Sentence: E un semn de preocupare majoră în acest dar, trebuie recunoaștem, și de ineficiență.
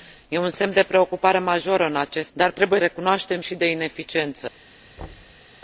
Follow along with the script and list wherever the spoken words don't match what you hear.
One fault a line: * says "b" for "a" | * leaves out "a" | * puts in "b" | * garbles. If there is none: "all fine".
all fine